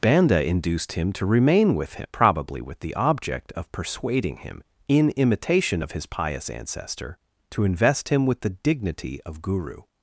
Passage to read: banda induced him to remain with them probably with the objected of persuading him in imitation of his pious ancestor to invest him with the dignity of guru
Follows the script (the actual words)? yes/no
no